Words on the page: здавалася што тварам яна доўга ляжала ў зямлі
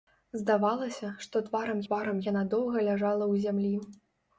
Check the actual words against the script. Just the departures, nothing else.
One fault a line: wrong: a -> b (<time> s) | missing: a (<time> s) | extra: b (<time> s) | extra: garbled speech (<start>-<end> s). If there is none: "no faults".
extra: тварам (1.9 s)